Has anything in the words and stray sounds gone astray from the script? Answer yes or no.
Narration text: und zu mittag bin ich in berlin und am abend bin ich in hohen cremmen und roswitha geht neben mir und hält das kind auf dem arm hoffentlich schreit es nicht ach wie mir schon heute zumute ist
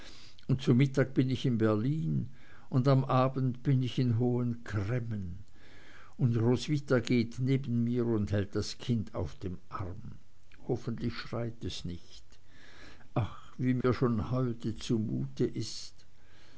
yes